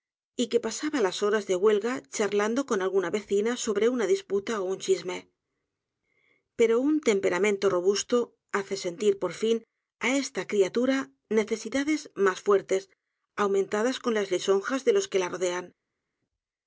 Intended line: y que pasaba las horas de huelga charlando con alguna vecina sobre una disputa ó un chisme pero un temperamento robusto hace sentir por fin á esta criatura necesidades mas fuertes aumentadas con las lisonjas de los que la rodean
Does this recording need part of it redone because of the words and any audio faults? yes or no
no